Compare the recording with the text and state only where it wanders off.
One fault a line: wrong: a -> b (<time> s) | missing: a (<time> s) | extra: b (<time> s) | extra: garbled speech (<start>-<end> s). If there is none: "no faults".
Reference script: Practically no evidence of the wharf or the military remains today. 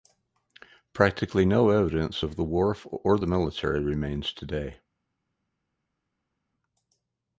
no faults